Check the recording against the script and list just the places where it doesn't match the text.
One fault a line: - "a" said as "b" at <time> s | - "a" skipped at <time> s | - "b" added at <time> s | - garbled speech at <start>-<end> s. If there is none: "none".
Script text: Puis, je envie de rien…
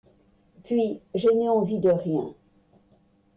- "n'ai" added at 1.3 s